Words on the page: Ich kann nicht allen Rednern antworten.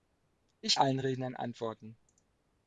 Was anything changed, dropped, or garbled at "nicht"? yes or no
yes